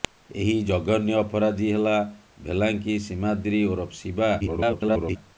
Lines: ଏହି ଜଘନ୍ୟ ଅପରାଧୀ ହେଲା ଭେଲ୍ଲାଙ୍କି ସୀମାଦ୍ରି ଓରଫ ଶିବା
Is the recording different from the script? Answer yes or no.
yes